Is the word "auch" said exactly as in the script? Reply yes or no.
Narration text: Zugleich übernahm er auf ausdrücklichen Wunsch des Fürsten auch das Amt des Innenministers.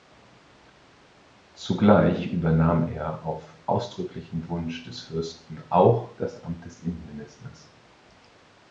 yes